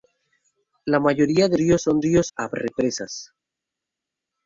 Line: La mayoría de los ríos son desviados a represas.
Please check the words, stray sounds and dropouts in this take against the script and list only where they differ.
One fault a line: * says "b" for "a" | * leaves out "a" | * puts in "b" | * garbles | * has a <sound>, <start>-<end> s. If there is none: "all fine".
* leaves out "los"
* says "ríos" for "desviados"